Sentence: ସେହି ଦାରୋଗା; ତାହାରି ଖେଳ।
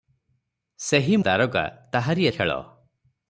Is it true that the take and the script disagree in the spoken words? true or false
false